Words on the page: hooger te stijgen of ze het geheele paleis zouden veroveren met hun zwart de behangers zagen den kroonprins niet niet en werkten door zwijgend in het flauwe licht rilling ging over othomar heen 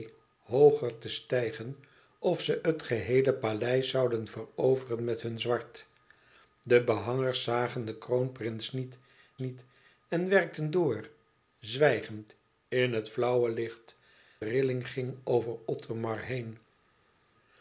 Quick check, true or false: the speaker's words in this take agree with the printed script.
true